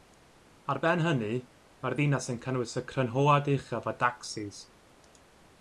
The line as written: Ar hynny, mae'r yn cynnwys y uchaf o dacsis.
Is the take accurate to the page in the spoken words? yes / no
no